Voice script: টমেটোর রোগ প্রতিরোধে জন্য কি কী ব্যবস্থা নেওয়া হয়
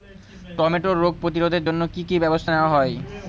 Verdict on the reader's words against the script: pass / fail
pass